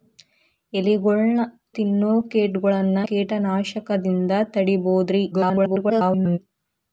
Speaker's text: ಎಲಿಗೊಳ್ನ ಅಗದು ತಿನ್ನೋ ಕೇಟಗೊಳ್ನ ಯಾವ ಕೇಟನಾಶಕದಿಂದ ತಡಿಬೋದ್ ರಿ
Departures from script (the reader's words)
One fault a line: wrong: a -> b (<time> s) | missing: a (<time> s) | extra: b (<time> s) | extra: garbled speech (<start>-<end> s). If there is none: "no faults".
missing: ಅಗದು (1.4 s)
missing: ಯಾವ (3.0 s)
extra: garbled speech (5.3-6.4 s)